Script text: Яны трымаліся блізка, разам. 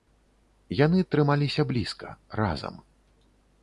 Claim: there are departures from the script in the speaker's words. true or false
false